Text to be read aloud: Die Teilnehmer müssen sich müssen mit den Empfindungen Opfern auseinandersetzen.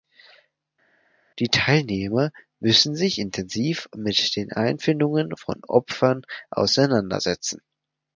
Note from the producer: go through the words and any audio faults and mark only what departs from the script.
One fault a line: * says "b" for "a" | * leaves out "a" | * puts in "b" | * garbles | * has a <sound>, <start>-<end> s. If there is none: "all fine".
* says "intensiv" for "müssen"
* puts in "von"